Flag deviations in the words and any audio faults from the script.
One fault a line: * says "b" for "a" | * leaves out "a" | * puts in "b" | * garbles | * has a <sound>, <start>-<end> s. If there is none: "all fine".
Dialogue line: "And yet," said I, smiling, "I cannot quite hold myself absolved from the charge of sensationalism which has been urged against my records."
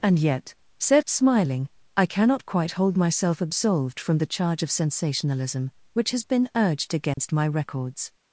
* leaves out "I"
* has a dropout, 7.1-7.2 s